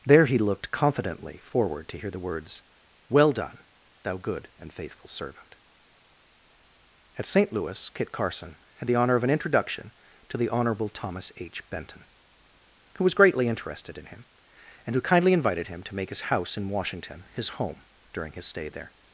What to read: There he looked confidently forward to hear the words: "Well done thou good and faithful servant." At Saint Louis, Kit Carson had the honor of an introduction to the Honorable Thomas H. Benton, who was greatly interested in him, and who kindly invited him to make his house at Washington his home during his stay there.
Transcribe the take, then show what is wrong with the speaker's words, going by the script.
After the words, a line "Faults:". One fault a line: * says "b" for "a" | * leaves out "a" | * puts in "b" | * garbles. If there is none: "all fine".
There he looked confidently forward to hear the words: "Well done thou good and faithful servant." At Saint Louis, Kit Carson had the honor of an introduction to the Honorable Thomas H. Benton, who was greatly interested in him, and who kindly invited him to make his house in Washington his home during his stay there.
Faults:
* says "in" for "at"